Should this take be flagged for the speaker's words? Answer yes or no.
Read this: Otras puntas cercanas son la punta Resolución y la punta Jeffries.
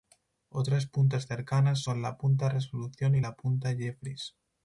no